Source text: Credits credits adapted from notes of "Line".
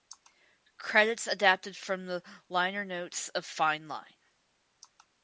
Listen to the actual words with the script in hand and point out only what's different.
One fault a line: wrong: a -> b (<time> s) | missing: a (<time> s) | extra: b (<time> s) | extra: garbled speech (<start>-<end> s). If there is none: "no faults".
missing: credits (1.3 s)
extra: the liner (2.1 s)
extra: Fine (3.4 s)